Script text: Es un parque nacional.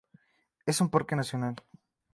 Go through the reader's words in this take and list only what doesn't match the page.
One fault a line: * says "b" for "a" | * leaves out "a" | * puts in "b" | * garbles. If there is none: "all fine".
all fine